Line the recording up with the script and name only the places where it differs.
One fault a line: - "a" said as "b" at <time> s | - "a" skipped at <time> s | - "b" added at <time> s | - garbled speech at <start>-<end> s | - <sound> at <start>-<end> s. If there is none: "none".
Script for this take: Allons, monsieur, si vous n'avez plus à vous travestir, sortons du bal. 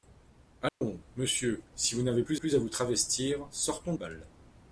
- dropout at 0.7-0.8 s
- "plus" added at 2.3 s
- "du" skipped at 3.9 s